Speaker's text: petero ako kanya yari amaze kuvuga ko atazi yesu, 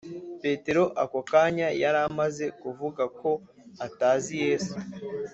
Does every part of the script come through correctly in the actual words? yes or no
yes